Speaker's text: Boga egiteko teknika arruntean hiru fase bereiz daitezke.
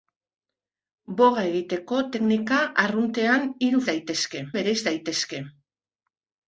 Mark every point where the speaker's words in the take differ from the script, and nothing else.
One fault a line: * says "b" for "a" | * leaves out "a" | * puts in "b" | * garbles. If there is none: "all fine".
* says "daitezke" for "fase"